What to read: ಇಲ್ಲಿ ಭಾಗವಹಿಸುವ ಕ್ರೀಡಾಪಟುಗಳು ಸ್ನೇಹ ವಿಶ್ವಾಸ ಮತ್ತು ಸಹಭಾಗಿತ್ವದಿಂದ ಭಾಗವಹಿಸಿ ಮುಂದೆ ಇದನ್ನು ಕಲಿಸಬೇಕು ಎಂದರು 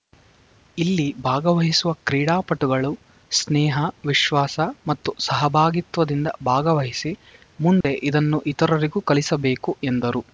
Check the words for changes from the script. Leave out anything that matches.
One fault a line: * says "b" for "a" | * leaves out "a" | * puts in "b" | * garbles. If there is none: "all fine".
* puts in "ಇತರರಿಗೂ"